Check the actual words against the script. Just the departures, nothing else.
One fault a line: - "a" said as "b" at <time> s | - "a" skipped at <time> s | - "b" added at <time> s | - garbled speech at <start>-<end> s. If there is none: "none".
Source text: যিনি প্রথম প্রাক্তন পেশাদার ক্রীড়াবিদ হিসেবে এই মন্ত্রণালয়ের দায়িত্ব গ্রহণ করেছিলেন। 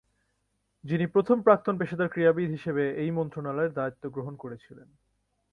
none